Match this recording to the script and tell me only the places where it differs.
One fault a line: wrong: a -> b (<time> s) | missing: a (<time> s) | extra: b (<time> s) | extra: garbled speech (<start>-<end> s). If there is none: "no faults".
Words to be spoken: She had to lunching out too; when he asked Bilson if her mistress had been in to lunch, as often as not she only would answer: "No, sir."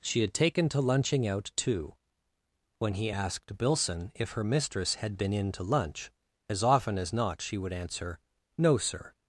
extra: taken (0.3 s)
missing: only (7.6 s)